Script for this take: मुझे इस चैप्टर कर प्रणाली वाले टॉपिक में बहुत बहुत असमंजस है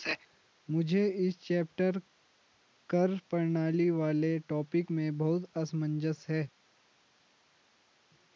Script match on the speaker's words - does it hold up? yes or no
no